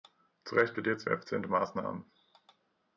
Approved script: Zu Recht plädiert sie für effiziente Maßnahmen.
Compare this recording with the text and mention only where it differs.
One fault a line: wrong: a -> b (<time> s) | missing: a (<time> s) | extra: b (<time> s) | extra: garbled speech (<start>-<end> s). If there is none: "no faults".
missing: für (1.1 s)